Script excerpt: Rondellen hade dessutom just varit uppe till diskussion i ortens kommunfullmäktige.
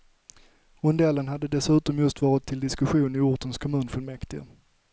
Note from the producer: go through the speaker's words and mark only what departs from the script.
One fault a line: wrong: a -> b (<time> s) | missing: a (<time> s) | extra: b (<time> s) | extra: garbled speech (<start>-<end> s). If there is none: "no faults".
missing: uppe (2.5 s)